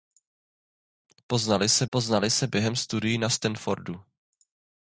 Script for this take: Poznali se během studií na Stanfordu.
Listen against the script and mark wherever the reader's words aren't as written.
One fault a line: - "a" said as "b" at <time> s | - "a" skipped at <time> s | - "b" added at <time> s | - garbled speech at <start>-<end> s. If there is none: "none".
- "poznali se" added at 1.9 s